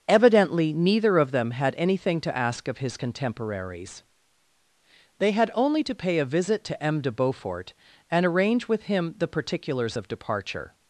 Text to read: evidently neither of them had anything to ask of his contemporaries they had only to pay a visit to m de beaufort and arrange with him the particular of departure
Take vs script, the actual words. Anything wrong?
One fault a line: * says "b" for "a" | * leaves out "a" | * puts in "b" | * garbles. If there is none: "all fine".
* says "particulars" for "particular"